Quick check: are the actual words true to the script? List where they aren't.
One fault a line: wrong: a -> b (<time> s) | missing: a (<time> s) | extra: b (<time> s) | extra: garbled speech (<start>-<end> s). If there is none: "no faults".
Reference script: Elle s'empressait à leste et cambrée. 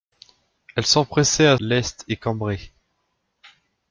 no faults